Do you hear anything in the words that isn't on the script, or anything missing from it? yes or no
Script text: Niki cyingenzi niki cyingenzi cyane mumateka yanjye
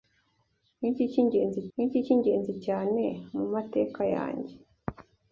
no